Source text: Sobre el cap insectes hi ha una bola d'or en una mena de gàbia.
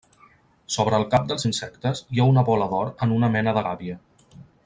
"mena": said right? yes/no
yes